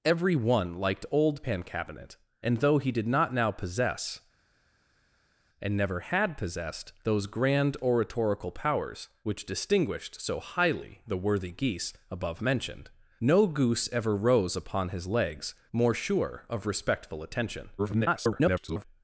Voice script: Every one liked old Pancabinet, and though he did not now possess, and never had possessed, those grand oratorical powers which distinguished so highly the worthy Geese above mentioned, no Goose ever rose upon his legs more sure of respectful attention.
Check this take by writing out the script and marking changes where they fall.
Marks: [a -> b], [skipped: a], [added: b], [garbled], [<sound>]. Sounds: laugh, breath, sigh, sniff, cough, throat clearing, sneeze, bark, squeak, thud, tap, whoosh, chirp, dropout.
Every one liked old Pancabinet, and though he did not now possess, and never had possessed, those grand oratorical powers which distinguished so highly the worthy Geese above mentioned, no Goose ever rose upon his legs more sure of respectful attention. [garbled]